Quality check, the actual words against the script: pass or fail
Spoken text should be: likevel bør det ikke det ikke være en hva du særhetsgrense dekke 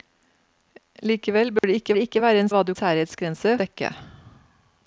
pass